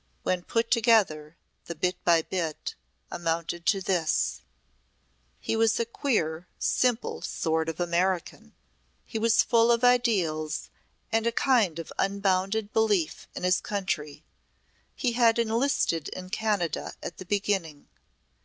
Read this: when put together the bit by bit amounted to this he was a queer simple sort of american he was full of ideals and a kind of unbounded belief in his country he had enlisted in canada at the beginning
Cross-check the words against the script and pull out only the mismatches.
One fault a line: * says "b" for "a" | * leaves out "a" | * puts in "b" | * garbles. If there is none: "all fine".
all fine